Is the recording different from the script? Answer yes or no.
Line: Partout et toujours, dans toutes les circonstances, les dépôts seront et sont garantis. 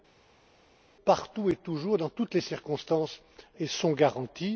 yes